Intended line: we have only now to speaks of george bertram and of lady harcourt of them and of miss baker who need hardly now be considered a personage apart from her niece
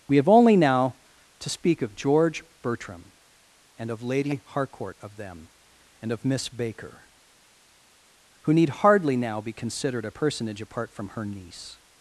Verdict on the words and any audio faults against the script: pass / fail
fail